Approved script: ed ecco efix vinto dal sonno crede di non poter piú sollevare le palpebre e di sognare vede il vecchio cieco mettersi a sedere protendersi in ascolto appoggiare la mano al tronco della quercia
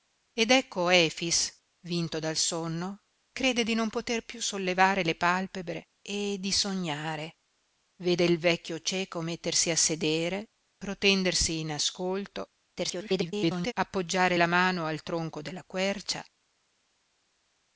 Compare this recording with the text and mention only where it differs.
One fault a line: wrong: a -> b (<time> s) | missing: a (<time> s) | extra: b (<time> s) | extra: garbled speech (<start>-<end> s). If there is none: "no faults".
extra: garbled speech (12.8-13.7 s)